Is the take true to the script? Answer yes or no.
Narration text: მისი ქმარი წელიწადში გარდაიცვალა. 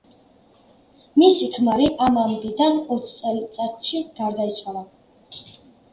no